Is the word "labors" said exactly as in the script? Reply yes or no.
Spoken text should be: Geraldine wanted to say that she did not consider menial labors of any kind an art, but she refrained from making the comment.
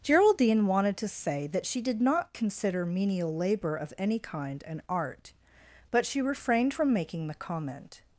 no